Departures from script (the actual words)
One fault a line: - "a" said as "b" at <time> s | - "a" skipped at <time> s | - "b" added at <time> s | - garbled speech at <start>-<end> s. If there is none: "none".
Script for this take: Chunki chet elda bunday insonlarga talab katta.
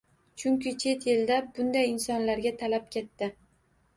none